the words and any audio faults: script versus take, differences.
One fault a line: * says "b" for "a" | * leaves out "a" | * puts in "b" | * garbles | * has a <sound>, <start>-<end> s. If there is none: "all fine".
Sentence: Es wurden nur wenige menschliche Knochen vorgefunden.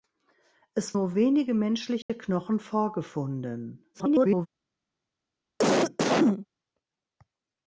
* leaves out "wurden"
* has a dropout, 2.0-2.1 s
* garbles
* has a cough, 5.6-6.5 s